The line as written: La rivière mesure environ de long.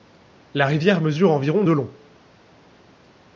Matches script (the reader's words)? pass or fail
pass